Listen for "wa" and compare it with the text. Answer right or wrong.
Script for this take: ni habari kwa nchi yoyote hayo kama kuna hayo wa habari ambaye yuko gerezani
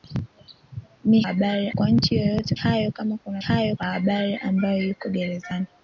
right